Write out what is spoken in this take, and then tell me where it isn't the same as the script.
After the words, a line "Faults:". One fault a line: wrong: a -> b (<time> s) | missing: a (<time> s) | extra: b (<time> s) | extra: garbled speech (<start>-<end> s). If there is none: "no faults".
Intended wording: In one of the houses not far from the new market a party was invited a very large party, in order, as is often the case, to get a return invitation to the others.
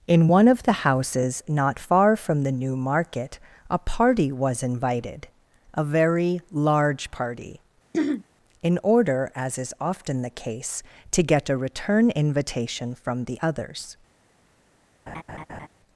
In one of the houses not far from the new market a party was invited a very large party, in order, as is often the case, to get a return invitation from the others.
Faults:
wrong: to -> from (13.0 s)